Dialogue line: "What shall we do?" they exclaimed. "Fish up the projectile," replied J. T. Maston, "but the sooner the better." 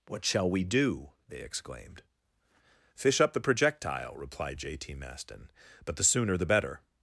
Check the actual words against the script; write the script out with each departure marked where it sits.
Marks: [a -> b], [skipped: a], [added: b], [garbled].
"What shall we do?" they exclaimed. "Fish up the projectile," replied J. T. Maston, "but the sooner the better."